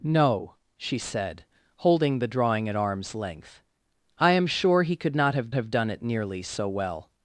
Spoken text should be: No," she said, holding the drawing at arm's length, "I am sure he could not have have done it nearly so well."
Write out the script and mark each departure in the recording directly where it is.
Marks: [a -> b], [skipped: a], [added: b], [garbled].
No," she said, holding the drawing at arm's length, "I am sure he could not have have done it nearly so well."